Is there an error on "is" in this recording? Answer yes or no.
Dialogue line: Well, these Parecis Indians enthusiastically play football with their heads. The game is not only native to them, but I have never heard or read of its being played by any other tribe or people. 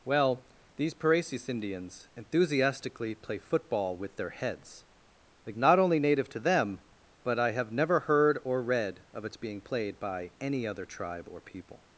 yes